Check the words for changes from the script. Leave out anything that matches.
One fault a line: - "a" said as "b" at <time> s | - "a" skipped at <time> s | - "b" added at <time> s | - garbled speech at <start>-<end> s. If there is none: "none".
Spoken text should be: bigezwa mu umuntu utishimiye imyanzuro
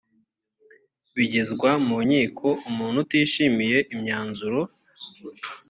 - "nkiko" added at 2.0 s